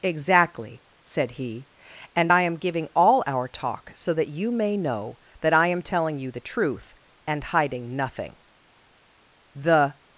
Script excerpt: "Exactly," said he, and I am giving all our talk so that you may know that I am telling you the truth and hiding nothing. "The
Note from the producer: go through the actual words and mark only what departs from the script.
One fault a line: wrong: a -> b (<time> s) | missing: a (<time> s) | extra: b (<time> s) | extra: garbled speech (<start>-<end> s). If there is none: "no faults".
no faults